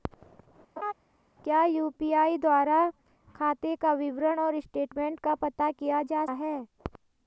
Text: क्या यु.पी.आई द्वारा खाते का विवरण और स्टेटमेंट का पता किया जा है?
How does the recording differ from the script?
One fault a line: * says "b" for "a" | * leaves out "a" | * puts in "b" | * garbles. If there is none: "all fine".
all fine